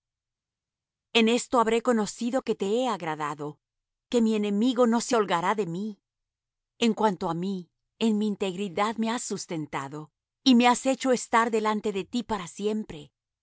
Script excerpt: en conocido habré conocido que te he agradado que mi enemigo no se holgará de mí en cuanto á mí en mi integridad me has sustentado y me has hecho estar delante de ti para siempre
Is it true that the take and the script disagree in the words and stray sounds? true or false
true